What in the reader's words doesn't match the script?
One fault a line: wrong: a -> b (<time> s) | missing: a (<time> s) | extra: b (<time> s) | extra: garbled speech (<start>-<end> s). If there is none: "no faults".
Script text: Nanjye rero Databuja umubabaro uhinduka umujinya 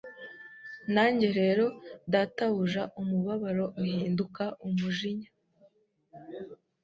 no faults